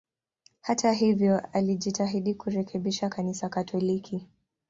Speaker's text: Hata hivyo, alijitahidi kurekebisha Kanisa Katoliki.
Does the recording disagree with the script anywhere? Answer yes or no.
no